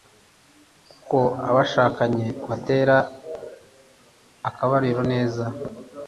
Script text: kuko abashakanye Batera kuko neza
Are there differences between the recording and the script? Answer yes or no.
yes